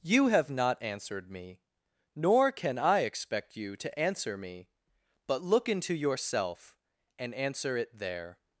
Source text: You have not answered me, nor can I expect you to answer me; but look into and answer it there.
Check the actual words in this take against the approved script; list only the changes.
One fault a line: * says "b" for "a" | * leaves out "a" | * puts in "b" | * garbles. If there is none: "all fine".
* puts in "yourself"